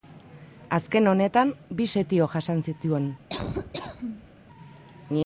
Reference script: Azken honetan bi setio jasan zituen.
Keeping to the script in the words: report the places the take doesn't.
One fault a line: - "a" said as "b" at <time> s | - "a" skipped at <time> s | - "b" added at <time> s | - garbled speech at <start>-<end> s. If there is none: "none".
none